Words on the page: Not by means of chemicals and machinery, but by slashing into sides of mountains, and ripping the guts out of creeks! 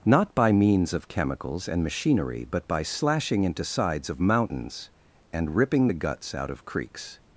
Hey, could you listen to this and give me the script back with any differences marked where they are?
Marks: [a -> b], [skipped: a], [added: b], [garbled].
Not by means of chemicals and machinery, but by slashing into sides of mountains, and ripping the guts out of creeks!